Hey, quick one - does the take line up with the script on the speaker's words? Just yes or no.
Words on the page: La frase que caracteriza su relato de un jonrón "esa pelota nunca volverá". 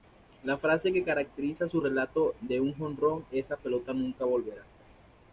yes